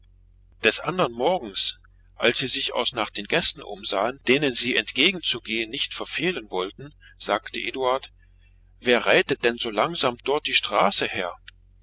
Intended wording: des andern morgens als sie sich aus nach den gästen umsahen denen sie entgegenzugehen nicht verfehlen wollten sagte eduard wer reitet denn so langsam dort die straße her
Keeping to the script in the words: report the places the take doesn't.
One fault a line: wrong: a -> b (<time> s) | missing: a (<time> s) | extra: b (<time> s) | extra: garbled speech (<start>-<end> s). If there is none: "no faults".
no faults